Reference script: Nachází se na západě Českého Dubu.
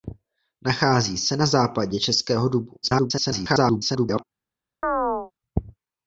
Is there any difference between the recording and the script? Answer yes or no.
yes